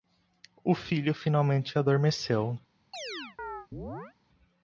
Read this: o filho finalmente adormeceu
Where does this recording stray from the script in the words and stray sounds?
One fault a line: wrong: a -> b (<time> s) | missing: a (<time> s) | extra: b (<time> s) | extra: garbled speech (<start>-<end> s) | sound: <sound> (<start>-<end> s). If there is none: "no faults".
sound: chirp (2.9-4.1 s)